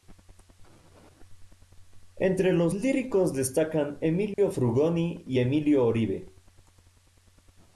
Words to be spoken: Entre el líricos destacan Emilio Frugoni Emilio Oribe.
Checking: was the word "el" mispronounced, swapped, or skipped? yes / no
yes